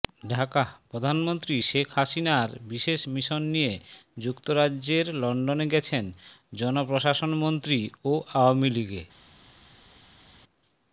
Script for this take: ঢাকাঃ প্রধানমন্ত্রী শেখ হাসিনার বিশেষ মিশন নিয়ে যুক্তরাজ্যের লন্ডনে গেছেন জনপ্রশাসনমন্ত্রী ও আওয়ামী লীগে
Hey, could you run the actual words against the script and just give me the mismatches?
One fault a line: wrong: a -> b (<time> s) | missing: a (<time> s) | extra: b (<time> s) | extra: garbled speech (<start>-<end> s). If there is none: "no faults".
no faults